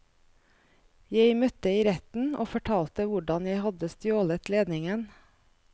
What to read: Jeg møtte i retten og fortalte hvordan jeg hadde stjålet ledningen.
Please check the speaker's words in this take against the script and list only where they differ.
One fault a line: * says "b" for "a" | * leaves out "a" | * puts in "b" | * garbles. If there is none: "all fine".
all fine